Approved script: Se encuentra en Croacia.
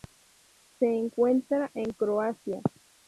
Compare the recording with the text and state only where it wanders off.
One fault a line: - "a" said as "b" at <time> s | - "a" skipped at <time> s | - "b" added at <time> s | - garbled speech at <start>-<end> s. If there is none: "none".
none